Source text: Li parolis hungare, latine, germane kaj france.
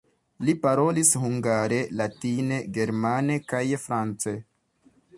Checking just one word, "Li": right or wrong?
right